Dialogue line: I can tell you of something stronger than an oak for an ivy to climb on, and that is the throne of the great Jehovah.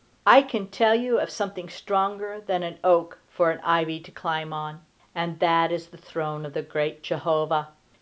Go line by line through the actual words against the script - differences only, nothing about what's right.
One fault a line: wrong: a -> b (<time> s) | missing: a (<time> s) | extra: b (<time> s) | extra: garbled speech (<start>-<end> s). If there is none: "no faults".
no faults